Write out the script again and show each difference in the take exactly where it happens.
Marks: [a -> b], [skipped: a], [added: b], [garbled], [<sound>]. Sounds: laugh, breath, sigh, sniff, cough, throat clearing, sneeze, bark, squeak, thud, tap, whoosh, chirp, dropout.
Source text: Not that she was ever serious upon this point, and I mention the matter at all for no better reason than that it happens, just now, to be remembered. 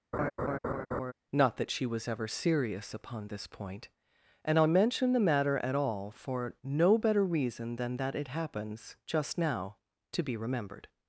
[laugh] Not that she was ever serious upon this point, and I mention the matter at all for no better reason than that it happens, just now, to be remembered.